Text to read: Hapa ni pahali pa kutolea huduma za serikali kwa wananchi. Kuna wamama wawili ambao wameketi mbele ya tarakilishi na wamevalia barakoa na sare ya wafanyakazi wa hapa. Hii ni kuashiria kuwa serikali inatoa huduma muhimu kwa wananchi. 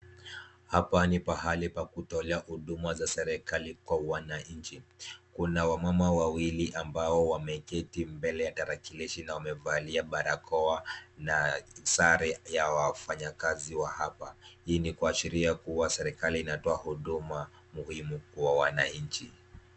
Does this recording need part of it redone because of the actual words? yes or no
no